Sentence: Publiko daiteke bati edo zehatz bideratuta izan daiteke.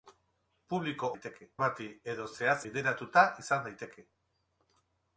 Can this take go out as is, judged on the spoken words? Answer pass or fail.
pass